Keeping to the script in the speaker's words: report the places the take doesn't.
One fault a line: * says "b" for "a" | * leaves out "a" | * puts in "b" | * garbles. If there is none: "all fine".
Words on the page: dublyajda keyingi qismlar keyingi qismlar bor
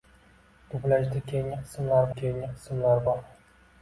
all fine